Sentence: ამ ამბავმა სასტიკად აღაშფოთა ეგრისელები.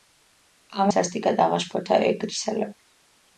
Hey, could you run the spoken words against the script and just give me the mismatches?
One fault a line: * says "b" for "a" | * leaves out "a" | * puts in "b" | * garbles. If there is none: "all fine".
* leaves out "ამბავმა"